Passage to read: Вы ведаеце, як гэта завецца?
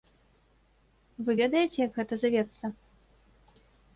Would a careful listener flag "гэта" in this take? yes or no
no